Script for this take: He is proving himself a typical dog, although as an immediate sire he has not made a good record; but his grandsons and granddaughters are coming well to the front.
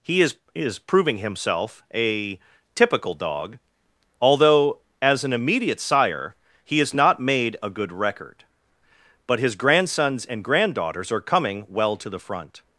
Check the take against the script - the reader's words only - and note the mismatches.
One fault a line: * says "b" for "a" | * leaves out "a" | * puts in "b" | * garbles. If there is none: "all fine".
* puts in "is"